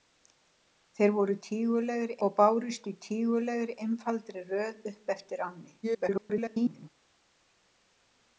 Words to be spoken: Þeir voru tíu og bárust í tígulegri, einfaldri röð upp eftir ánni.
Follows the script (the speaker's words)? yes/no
no